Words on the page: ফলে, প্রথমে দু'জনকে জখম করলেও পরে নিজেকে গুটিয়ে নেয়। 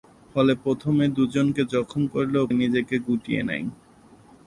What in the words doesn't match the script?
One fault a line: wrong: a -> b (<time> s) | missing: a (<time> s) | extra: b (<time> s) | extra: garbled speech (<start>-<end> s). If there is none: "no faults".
missing: পরে (2.5 s)